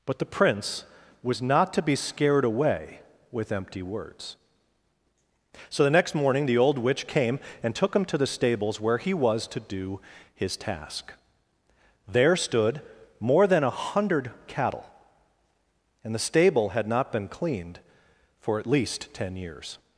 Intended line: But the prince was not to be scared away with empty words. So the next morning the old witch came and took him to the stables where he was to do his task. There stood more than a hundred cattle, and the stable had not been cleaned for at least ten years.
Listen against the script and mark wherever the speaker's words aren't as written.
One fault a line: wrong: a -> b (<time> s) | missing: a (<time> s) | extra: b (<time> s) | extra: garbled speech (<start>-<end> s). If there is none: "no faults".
no faults